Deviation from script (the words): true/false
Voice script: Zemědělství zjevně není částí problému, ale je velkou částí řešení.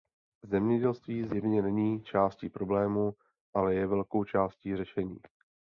false